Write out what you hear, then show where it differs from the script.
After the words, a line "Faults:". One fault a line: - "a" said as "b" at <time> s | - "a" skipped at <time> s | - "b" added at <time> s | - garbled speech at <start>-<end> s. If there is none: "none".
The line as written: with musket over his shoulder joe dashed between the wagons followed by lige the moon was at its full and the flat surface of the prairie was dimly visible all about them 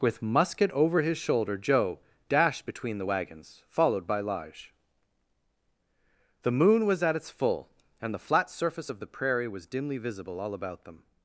with musket over his shoulder joe dashed between the wagons followed by lige the moon was at its full and the flat surface of the prairie was dimly visible all about them
Faults:
none